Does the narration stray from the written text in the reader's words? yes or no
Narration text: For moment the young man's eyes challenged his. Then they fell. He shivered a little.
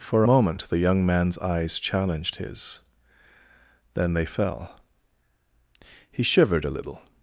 no